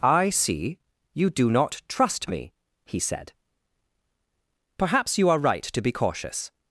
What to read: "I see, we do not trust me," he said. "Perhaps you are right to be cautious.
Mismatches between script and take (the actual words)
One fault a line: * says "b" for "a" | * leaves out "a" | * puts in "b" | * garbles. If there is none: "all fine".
* says "you" for "we"